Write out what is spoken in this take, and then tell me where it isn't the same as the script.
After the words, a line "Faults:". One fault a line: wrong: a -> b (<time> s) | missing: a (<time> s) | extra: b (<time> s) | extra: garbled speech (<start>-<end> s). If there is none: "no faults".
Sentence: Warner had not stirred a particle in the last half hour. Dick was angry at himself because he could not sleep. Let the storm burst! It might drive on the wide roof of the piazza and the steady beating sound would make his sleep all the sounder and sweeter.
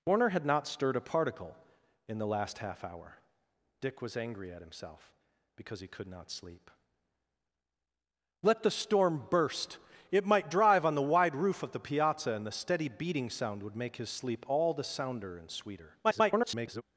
Warner had not stirred a particle in the last half hour. Dick was angry at himself because he could not sleep. Let the storm burst! It might drive on the wide roof of the piazza and the steady beating sound would make his sleep all the sounder and sweeter. [garbled]
Faults:
extra: garbled speech (16.0-16.8 s)